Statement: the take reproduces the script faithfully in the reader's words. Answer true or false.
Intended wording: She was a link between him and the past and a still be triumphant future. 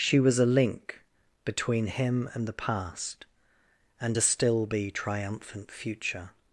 true